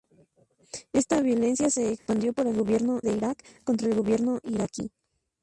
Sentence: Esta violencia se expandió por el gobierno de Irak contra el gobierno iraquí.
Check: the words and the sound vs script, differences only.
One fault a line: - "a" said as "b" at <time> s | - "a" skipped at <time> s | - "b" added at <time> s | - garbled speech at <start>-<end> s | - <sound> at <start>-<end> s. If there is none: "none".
- dropout at 2.0-2.1 s